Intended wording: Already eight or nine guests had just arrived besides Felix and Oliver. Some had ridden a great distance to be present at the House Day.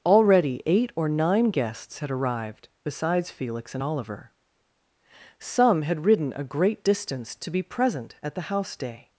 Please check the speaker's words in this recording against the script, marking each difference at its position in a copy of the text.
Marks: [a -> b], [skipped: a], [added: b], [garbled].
Already eight or nine guests had [skipped: just] arrived besides Felix and Oliver. Some had ridden a great distance to be present at the House Day.